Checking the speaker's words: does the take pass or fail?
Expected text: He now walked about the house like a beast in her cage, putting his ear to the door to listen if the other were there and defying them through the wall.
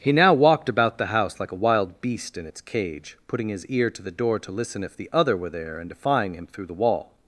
fail